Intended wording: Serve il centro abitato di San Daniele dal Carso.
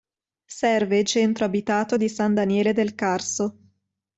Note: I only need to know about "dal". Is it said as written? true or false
false